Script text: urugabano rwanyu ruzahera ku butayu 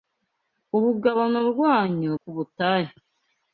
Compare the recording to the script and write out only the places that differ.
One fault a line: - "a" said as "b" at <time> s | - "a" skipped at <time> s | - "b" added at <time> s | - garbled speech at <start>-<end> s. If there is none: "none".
- "ruzahera" skipped at 2.1 s